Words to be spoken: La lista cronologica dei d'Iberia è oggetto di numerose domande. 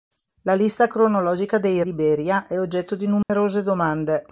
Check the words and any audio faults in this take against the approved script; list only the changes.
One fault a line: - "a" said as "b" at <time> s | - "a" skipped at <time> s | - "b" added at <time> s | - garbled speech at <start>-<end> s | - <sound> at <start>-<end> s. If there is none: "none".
- dropout at 3.2-3.3 s